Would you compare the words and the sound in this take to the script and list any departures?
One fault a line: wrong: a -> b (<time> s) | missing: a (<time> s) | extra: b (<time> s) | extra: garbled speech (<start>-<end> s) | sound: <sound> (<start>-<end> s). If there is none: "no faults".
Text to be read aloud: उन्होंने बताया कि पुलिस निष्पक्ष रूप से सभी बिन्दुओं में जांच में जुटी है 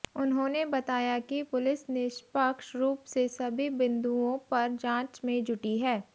wrong: में -> पर (4.5 s)